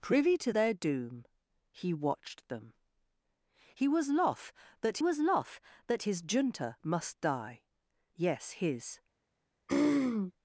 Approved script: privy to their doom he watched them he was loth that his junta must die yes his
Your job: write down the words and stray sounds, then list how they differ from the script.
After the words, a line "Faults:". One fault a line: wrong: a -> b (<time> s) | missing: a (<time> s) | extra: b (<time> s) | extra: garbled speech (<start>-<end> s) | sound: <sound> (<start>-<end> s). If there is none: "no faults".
privy to their doom he watched them he was loth that was loth that his junta must die yes his
Faults:
extra: was loth that (5.0 s)
sound: throat clearing (9.7-10.3 s)